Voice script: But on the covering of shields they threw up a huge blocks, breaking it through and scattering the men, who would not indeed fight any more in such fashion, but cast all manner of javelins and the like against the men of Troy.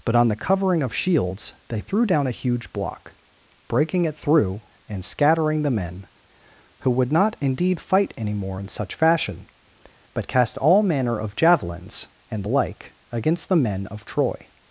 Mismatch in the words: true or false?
true